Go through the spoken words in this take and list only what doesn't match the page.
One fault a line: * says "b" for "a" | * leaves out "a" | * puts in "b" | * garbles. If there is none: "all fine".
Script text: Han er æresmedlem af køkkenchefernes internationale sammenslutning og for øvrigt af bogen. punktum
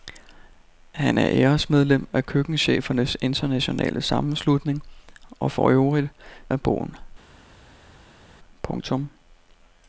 all fine